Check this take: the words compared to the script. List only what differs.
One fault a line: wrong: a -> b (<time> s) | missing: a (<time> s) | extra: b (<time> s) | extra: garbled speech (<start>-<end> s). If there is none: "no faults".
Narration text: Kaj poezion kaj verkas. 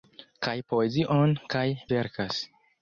no faults